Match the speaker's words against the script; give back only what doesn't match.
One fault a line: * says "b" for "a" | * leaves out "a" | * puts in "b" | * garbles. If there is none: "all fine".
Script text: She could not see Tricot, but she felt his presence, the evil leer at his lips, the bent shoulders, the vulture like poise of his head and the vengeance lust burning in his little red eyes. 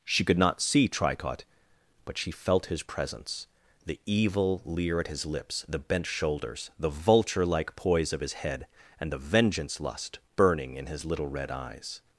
all fine